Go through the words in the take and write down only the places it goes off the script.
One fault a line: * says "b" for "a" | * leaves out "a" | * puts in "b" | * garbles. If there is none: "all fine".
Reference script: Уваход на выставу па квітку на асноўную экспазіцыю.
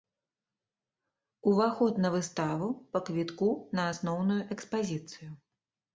all fine